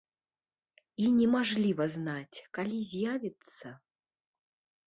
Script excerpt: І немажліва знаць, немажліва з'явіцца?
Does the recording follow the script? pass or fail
fail